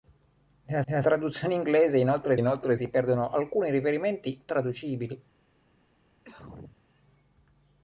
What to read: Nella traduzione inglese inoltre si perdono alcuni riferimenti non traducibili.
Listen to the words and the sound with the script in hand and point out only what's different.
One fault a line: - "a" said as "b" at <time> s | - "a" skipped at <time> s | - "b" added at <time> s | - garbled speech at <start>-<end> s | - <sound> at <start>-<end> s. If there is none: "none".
- "nella" added at 0.8 s
- "inoltre" added at 2.3 s
- "non" skipped at 4.4 s
- cough at 6.2-6.8 s